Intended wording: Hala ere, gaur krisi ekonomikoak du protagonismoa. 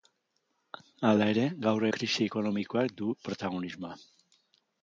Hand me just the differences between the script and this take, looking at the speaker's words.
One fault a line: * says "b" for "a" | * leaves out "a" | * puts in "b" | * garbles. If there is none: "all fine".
all fine